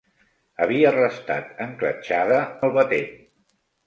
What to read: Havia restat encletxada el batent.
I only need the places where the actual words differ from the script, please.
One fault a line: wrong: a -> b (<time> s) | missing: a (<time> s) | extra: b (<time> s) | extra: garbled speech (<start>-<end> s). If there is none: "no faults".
no faults